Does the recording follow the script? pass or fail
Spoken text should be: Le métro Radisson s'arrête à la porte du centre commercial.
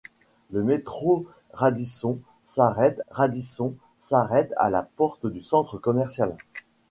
fail